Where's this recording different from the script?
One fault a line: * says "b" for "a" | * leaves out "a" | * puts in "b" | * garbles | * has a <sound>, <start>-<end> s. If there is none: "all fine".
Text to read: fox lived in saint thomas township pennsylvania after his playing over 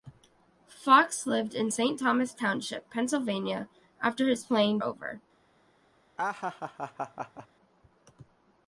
* has a laugh, 6.2-7.5 s